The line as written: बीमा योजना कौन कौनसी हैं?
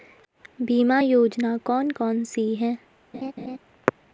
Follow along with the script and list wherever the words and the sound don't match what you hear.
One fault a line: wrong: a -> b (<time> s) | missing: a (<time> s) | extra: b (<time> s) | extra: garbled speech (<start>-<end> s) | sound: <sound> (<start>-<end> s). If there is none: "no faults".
sound: laugh (3.1-3.6 s)